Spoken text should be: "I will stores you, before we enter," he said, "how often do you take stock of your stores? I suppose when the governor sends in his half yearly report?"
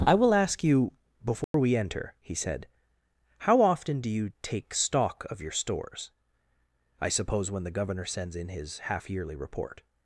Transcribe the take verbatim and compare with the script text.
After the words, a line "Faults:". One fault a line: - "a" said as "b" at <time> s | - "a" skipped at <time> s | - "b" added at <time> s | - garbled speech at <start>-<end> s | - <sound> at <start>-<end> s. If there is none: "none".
"I will ask you, before we enter," he said, "how often do you take stock of your stores? I suppose when the governor sends in his half yearly report?"
Faults:
- "stores" said as "ask" at 0.3 s
- dropout at 1.4-1.5 s